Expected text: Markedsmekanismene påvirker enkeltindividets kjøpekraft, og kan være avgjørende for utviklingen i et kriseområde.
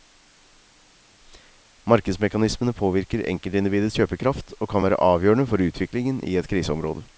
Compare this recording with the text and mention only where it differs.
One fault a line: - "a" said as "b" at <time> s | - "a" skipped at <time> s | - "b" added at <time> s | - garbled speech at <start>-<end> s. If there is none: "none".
none